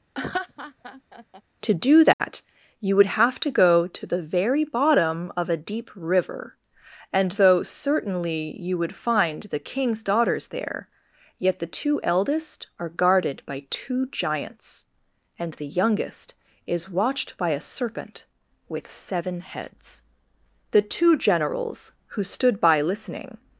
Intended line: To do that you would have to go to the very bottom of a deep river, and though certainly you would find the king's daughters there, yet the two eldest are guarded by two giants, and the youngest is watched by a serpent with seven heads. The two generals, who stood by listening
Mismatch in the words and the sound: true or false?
true